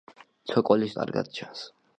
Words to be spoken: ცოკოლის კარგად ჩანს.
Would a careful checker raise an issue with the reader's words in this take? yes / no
no